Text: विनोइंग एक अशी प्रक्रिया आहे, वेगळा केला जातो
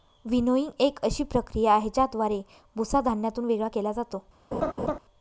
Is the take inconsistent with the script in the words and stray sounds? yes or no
yes